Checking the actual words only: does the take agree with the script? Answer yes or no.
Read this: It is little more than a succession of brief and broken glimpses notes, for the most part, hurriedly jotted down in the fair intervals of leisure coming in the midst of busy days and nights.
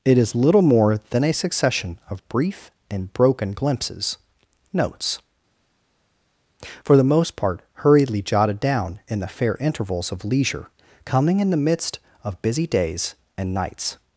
yes